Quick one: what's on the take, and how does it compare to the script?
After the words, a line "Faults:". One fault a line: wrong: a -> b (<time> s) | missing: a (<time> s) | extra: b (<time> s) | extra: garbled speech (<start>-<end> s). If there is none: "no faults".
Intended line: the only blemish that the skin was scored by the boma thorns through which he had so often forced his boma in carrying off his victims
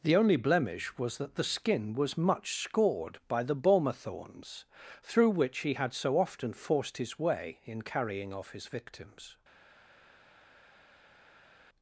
the only blemish was that the skin was much scored by the boma thorns through which he had so often forced his way in carrying off his victims
Faults:
extra: was (1.0 s)
extra: much (2.2 s)
wrong: boma -> way (7.2 s)